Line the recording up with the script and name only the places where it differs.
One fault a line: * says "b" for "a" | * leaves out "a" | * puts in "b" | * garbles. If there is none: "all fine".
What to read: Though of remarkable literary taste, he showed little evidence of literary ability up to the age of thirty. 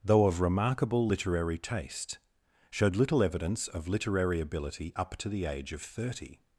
* leaves out "he"